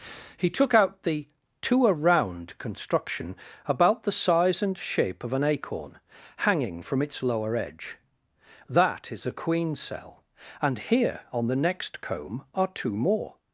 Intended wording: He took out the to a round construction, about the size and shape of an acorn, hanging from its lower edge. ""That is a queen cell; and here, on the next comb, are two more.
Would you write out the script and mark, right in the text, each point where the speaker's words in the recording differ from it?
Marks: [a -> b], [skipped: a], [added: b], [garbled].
He took out the to a round construction, about the size and shape of an acorn, hanging from its lower edge. ""That is a queen cell; and here, on the next comb, are two more.